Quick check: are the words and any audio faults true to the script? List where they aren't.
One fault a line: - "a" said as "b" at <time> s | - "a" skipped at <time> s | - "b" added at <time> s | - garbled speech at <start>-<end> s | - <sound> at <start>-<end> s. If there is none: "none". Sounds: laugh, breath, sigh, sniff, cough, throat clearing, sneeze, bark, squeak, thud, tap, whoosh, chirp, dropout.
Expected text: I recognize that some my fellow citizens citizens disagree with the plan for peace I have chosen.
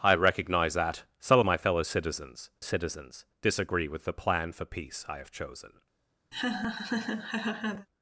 - laugh at 6.3-7.9 s